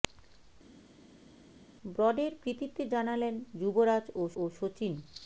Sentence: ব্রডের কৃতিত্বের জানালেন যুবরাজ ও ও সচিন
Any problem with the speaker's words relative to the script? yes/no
no